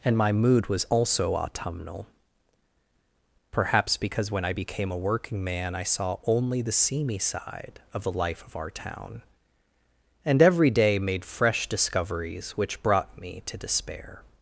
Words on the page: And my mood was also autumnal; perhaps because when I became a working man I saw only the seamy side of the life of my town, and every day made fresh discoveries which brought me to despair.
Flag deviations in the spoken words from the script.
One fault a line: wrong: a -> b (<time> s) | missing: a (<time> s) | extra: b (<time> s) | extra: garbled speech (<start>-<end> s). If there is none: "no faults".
wrong: my -> our (8.6 s)